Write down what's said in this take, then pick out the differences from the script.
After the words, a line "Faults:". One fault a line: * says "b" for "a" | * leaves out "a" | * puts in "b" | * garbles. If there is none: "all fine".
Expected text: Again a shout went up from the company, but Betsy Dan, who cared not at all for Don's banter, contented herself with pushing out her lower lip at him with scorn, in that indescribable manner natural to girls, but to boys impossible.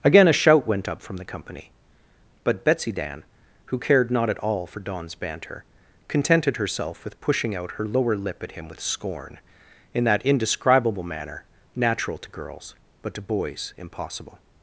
Again a shout went up from the company, but Betsy Dan, who cared not at all for Don's banter, contented herself with pushing out her lower lip at him with scorn, in that indescribable manner natural to girls, but to boys impossible.
Faults:
all fine